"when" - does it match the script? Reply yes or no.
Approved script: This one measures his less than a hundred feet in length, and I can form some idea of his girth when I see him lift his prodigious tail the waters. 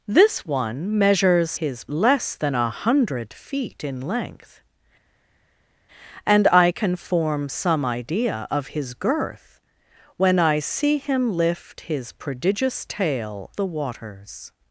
yes